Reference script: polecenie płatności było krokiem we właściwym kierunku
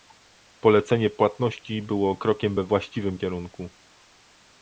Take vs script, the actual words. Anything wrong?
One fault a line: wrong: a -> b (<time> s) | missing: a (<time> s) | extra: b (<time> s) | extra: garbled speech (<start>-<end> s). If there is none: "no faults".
no faults